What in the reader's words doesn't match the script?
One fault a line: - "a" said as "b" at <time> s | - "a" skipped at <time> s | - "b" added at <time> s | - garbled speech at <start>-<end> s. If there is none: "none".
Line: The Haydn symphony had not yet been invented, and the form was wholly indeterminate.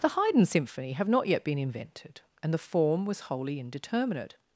- "had" said as "have" at 0.9 s